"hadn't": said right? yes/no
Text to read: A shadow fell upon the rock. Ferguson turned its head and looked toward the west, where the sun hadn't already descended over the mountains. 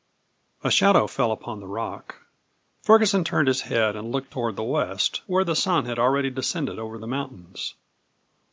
no